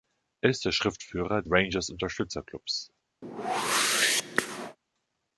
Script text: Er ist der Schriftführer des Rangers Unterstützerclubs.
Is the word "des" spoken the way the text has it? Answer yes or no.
no